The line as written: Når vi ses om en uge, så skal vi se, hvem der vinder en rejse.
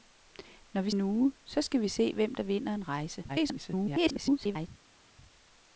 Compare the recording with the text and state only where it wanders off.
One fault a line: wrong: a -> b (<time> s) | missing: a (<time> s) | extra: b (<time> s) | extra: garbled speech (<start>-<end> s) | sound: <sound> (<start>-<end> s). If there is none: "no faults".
missing: ses om (0.9 s)
extra: garbled speech (3.3-4.7 s)